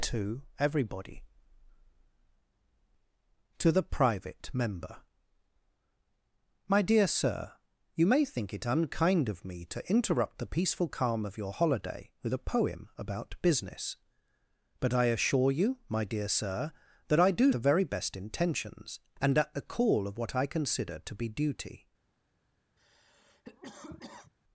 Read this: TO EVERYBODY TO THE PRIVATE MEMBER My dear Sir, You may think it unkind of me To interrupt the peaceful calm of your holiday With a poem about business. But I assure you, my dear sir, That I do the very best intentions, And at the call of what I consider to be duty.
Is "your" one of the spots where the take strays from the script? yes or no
no